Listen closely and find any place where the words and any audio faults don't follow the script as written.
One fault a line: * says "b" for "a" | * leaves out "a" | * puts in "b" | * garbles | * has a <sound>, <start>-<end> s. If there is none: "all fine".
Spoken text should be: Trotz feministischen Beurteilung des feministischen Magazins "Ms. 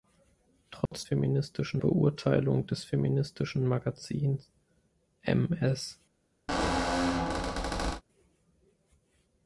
* has a dropout, 0.9-0.9 s
* has a squeak, 6.5-8.0 s